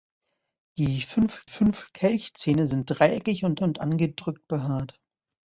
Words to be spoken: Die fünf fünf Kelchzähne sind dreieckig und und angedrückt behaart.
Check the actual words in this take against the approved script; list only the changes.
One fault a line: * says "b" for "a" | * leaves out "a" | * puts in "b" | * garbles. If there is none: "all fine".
all fine